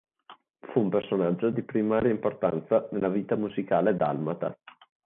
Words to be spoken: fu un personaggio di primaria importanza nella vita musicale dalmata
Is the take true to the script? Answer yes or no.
yes